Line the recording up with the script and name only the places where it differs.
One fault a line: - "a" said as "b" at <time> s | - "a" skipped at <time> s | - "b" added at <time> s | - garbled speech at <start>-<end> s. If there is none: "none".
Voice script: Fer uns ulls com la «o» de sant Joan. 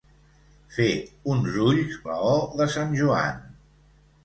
- "com" skipped at 2.0 s